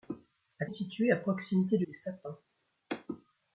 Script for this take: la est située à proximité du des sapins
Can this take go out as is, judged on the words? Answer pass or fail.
pass